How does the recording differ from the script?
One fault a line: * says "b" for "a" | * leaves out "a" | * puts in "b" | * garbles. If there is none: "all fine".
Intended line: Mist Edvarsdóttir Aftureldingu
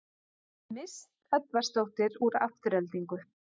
* puts in "úr"